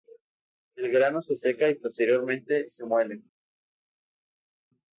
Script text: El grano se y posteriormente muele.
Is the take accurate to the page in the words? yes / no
no